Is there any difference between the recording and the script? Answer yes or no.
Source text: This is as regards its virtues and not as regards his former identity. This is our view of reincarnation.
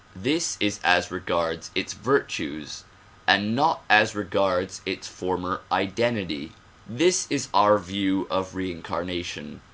yes